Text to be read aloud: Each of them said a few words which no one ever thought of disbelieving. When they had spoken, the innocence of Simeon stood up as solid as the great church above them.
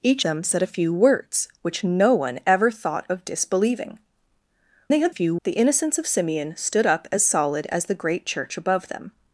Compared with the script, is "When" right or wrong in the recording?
wrong